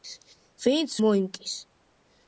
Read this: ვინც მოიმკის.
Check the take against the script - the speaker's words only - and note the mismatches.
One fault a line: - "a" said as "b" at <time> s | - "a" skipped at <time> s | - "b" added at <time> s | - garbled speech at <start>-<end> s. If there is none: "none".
none